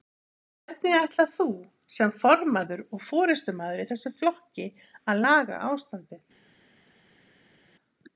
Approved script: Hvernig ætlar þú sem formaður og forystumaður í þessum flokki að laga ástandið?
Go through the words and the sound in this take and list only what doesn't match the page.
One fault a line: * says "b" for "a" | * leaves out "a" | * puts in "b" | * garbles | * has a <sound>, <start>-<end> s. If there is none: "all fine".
all fine